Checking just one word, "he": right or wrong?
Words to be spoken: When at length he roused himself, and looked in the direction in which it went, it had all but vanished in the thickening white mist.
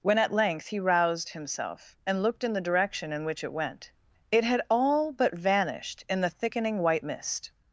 right